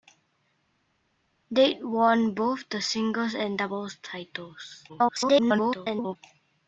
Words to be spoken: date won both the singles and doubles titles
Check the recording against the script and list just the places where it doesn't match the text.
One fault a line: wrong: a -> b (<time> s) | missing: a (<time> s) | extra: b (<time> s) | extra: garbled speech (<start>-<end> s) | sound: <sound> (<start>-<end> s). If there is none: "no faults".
extra: garbled speech (4.9-6.2 s)